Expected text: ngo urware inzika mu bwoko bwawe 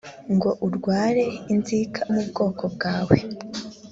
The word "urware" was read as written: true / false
true